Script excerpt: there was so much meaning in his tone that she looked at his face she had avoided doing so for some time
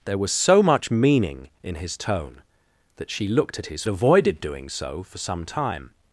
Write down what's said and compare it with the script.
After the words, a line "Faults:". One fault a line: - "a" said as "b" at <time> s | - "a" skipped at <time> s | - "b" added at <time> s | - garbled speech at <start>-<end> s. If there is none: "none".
there was so much meaning in his tone that she looked at his avoided doing so for some time
Faults:
- "face she had" skipped at 3.8 s